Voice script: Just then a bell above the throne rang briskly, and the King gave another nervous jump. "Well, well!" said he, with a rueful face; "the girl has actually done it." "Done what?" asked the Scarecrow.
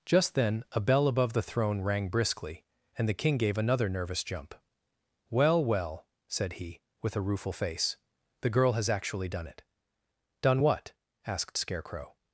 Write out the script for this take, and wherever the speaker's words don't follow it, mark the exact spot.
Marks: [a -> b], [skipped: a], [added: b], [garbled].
Just then a bell above the throne rang briskly, and the King gave another nervous jump. "Well, well!" said he, with a rueful face; "the girl has actually done it." "Done what?" asked [skipped: the] Scarecrow.